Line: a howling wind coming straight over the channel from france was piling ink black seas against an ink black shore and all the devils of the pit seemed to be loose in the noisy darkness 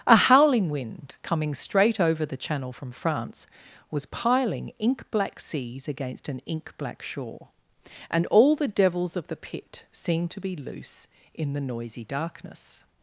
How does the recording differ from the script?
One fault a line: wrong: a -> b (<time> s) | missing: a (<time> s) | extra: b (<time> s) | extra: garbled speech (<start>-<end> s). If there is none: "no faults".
no faults